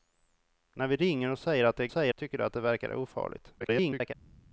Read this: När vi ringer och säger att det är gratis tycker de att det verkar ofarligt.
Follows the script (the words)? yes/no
no